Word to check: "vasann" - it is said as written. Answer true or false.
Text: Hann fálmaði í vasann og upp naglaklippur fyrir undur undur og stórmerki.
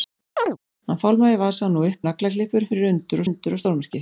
true